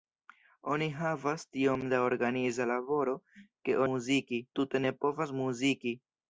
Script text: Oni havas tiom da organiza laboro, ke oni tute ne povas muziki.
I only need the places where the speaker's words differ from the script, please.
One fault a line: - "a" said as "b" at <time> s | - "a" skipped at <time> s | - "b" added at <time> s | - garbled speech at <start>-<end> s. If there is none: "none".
- "oni" said as "muziki" at 3.9 s